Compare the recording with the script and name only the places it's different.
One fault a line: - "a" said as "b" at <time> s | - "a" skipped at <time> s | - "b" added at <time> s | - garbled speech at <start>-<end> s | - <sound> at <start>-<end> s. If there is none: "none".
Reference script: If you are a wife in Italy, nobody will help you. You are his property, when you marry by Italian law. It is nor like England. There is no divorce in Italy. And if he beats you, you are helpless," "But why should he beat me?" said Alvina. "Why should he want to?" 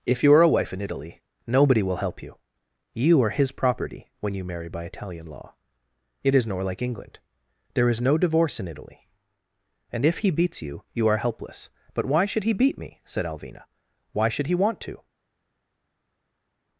none